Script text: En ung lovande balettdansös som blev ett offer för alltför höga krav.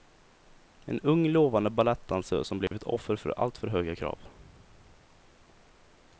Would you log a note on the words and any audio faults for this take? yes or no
yes